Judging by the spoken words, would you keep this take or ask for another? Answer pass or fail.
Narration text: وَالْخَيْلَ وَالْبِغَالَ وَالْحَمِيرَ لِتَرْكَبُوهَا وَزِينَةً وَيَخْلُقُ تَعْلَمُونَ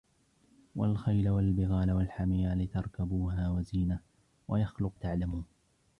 pass